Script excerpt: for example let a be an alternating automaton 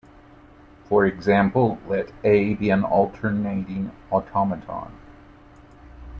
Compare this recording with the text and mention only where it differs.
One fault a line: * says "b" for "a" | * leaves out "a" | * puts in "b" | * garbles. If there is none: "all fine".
all fine